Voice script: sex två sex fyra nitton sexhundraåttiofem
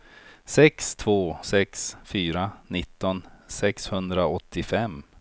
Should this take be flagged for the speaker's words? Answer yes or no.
no